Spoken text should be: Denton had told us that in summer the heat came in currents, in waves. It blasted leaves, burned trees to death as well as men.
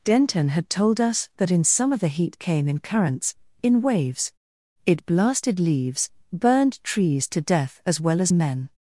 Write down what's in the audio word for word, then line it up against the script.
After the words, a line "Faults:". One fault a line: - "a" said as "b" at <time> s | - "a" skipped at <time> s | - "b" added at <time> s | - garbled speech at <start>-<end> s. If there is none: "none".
Denton had told us that in summer the heat came in currents, in waves. It blasted leaves, burned trees to death as well as men.
Faults:
none